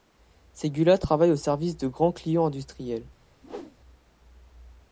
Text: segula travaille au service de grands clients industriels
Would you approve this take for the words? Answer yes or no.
yes